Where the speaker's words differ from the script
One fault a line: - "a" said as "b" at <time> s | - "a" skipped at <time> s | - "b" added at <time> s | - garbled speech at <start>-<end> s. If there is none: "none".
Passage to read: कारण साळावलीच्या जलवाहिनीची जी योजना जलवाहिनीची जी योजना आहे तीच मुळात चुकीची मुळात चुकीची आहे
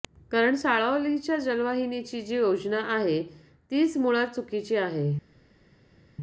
- "जलवाहिनीची जी योजना" skipped at 2.8 s
- "मुळात चुकीची" skipped at 4.8 s